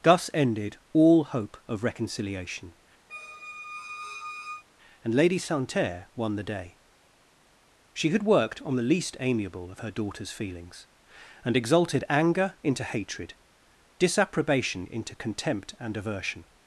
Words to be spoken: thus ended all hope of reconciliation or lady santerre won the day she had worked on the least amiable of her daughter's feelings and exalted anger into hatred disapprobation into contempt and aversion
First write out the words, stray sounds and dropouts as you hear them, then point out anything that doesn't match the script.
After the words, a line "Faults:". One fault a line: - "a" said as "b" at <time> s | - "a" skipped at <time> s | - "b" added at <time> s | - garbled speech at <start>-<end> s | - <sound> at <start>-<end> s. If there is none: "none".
thus ended all hope of reconciliation and lady santerre won the day she had worked on the least amiable of her daughter's feelings and exalted anger into hatred disapprobation into contempt and aversion
Faults:
- squeak at 3.1-4.6 s
- "or" said as "and" at 5.0 s